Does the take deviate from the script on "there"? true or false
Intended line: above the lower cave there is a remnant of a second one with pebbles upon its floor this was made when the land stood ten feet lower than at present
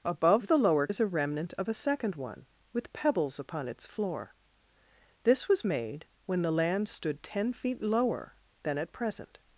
true